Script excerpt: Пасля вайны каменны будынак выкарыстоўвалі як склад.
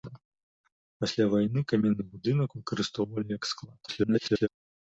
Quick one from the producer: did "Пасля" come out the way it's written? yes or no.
yes